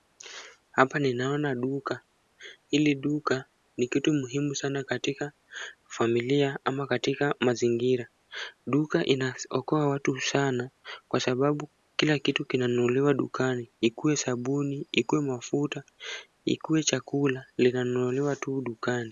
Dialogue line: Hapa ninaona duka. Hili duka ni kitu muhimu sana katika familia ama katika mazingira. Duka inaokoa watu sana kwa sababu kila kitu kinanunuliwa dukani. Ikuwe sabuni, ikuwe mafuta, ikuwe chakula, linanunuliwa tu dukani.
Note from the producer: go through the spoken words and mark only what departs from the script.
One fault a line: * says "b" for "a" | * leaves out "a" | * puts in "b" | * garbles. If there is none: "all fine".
all fine